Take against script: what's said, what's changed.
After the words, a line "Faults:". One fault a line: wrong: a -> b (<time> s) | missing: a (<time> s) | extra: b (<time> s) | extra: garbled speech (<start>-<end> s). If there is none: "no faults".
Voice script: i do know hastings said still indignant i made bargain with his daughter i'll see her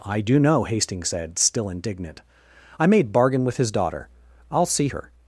i do know hastings said still indignant i made bargain with his daughter i'll see her
Faults:
no faults